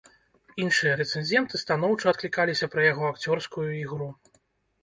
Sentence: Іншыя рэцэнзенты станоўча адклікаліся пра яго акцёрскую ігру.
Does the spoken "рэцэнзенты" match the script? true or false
true